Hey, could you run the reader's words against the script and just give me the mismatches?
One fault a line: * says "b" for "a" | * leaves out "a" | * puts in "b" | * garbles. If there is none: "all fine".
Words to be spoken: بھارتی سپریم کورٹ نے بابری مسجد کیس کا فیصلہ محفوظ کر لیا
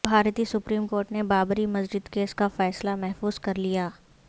all fine